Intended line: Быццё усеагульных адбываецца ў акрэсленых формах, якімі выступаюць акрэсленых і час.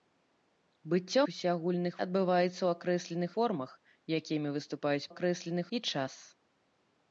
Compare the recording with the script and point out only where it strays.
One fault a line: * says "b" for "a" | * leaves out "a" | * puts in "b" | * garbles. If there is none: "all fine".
all fine